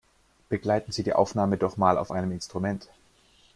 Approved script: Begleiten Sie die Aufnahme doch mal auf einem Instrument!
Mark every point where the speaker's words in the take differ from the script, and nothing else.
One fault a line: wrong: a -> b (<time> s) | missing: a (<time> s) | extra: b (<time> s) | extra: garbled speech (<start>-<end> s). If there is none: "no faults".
no faults